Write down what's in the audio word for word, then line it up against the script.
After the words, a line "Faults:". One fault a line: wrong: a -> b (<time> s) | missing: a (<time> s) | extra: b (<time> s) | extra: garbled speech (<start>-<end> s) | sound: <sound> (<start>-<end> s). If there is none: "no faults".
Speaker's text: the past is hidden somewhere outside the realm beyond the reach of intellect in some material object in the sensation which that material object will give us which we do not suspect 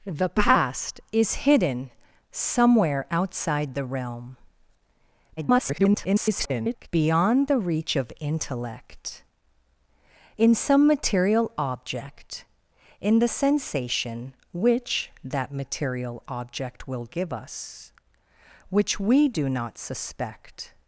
the past is hidden somewhere outside the realm [garbled] beyond the reach of intellect in some material object in the sensation which that material object will give us which we do not suspect
Faults:
extra: garbled speech (5.4-6.9 s)